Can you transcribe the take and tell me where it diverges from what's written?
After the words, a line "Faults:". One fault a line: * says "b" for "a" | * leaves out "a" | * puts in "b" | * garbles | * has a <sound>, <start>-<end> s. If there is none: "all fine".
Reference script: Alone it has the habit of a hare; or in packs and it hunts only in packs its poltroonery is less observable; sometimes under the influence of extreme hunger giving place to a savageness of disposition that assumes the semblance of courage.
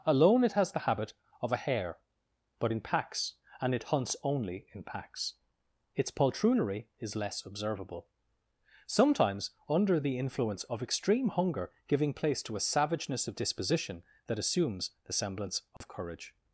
Alone it has the habit of a hare; but in packs and it hunts only in packs its poltroonery is less observable; sometimes under the influence of extreme hunger giving place to a savageness of disposition that assumes the semblance of courage.
Faults:
* says "but" for "or"
* has a dropout, 15.8-15.8 s